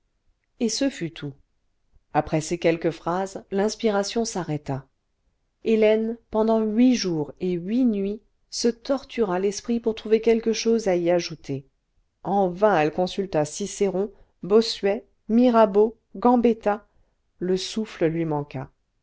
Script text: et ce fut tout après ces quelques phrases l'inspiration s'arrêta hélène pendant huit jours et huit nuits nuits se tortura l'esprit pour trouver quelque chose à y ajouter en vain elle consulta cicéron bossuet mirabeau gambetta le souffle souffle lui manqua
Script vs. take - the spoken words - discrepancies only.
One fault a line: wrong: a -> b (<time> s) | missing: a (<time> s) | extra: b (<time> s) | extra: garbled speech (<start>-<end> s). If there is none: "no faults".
missing: nuits (8.2 s)
missing: souffle (18.1 s)